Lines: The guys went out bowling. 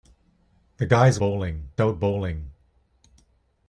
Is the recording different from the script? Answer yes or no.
yes